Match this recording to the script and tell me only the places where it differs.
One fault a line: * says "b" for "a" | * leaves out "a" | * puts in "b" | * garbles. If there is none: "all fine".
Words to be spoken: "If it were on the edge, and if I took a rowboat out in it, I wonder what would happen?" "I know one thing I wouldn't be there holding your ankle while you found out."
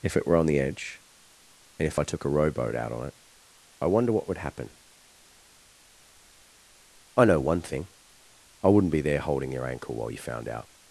* says "on" for "in"